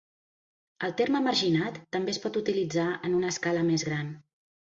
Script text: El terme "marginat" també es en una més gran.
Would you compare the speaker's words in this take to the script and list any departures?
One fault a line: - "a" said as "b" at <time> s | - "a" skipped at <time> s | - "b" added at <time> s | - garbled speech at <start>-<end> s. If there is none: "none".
- "pot utilitzar" added at 2.2 s
- "escala" added at 3.4 s